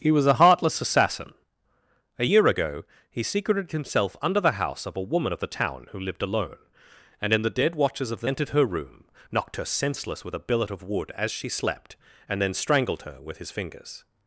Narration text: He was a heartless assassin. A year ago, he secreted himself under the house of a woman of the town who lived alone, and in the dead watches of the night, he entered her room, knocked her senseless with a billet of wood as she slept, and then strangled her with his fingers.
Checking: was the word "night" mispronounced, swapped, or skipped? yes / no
yes